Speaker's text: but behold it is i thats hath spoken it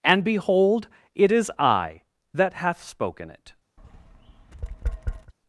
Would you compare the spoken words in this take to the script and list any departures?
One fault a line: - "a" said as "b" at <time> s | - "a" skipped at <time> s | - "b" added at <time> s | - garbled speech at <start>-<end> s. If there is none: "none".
- "but" said as "and" at 0.0 s
- "thats" said as "that" at 2.3 s